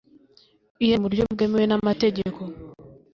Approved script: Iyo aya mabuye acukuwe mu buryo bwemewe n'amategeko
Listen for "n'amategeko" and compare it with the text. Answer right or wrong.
right